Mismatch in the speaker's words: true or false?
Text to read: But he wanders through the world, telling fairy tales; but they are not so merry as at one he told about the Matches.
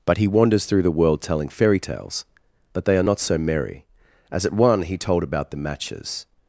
false